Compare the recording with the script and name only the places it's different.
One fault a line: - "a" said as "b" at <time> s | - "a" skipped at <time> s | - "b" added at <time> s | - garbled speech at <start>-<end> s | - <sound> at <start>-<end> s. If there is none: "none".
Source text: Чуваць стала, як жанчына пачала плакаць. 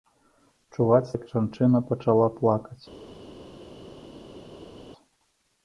- "стала" skipped at 1.1 s